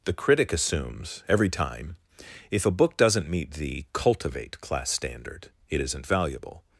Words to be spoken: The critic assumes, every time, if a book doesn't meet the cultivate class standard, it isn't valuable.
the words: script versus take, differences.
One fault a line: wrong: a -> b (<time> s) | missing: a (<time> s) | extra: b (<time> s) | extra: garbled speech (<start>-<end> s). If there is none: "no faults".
no faults